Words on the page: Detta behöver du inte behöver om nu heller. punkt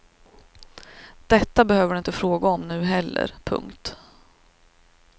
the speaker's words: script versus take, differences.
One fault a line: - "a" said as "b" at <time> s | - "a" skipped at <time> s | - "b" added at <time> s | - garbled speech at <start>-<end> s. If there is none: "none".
- "behöver" said as "fråga" at 2.1 s